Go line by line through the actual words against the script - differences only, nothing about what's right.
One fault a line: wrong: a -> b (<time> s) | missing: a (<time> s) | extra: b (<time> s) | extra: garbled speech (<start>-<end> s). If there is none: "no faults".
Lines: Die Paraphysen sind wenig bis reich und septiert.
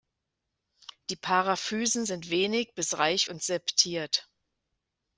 no faults